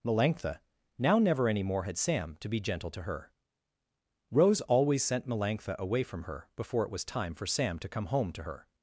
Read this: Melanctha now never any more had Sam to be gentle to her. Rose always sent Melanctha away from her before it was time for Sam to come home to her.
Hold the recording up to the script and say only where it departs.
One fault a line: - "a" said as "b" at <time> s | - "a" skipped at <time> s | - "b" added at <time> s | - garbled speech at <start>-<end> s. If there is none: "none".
none